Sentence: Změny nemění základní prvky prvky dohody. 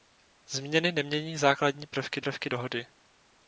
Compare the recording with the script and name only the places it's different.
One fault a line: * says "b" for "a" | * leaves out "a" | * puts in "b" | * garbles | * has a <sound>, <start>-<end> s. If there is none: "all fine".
all fine